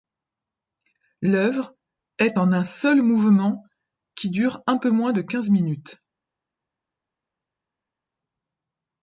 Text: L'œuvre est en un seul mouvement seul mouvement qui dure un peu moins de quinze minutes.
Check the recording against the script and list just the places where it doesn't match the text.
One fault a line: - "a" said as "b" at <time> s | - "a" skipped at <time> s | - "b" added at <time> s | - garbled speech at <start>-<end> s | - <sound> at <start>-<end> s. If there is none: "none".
- "seul mouvement" skipped at 3.6 s